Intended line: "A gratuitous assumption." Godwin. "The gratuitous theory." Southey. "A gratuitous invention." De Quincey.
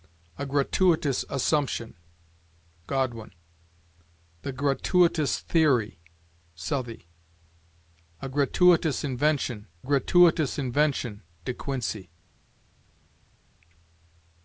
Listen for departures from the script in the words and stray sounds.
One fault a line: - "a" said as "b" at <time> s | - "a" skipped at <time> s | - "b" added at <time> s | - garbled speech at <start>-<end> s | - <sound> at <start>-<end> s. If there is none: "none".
- "gratuitous invention" added at 9.8 s